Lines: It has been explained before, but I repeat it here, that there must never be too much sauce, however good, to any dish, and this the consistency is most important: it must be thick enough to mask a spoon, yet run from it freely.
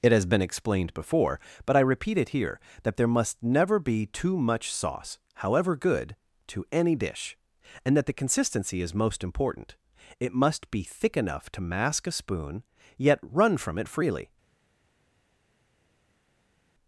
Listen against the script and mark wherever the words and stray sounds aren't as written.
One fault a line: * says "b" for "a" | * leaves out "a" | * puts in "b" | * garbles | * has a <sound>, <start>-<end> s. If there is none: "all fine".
* says "that" for "this"